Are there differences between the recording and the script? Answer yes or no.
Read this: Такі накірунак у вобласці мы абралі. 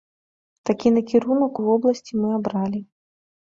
no